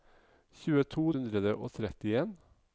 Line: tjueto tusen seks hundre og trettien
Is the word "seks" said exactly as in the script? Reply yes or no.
no